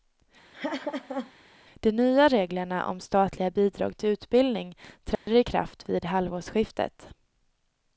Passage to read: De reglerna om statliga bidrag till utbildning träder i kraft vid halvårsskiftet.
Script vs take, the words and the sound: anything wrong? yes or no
yes